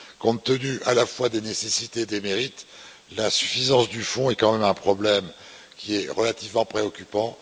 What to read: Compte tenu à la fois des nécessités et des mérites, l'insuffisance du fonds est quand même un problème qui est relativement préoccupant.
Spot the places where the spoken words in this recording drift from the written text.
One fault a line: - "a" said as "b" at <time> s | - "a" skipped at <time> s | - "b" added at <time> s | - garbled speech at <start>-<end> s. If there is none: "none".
none